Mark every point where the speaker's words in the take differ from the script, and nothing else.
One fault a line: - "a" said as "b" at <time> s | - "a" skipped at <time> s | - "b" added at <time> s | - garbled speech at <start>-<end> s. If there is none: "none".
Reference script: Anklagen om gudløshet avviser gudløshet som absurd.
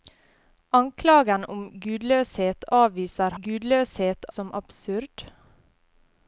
none